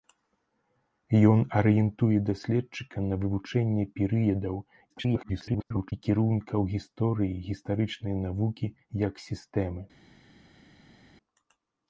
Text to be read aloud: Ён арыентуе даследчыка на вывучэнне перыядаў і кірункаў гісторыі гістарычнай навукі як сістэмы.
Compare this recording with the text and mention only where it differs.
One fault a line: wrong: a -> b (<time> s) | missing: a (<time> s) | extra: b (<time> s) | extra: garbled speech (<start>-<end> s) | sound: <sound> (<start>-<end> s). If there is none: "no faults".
extra: garbled speech (4.9-5.9 s)